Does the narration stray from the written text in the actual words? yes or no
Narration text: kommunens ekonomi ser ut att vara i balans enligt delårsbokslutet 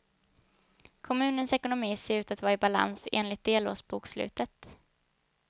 no